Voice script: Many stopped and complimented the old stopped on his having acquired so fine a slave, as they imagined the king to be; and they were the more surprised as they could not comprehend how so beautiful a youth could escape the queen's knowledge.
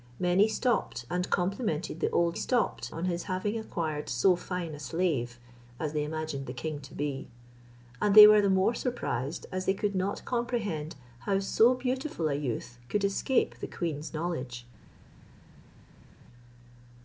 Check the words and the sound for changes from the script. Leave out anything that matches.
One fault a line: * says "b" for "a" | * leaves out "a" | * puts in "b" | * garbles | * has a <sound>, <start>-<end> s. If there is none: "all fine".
all fine